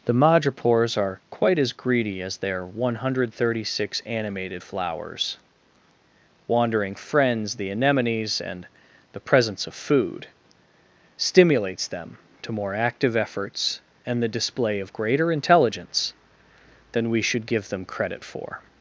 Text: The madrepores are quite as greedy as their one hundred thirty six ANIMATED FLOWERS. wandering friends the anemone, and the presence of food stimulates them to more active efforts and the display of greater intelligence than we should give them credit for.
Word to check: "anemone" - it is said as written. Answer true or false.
false